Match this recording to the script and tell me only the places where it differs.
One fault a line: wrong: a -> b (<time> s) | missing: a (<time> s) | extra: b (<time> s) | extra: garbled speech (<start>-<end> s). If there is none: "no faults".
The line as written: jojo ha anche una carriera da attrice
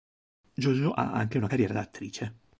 no faults